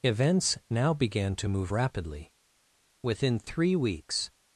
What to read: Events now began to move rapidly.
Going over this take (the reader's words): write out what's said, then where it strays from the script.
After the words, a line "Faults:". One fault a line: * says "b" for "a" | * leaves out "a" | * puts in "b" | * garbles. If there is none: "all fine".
Events now began to move rapidly. Within three weeks
Faults:
* puts in "Within three weeks"